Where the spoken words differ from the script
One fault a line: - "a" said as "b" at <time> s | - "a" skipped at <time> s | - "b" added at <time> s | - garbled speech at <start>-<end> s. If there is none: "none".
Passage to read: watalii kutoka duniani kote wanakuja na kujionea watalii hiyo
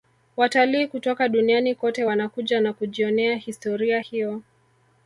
- "watalii" said as "historia" at 3.4 s